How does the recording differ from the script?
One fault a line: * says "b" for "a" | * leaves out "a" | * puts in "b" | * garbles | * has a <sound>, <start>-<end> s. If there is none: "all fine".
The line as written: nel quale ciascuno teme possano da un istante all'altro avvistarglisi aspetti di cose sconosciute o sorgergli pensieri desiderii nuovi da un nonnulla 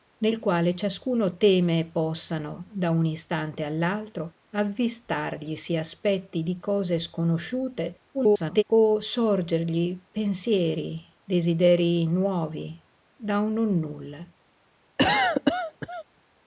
* garbles
* has a cough, 15.0-16.0 s